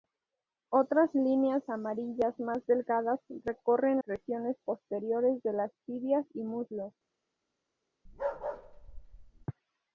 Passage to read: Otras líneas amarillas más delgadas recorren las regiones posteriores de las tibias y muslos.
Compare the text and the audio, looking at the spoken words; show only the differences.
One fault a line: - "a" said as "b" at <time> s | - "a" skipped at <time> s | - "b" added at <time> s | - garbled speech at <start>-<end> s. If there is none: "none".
- "las" skipped at 4.0 s